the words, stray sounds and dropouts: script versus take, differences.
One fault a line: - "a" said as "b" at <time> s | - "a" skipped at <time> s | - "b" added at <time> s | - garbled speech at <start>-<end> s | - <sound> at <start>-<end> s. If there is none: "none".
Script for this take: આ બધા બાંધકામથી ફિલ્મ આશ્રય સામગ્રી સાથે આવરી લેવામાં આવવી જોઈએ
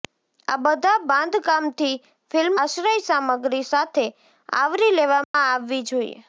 - dropout at 5.2-5.3 s